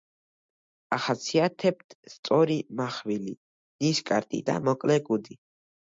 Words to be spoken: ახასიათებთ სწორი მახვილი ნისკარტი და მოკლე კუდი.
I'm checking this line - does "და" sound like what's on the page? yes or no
yes